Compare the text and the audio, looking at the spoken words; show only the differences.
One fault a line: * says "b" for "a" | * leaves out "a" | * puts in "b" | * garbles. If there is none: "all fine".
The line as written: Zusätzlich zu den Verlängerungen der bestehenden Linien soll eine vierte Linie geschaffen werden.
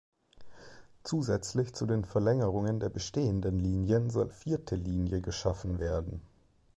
* leaves out "eine"